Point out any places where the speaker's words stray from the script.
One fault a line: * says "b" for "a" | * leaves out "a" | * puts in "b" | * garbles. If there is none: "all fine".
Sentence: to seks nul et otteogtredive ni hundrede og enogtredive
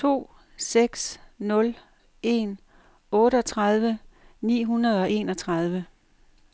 * says "en" for "et"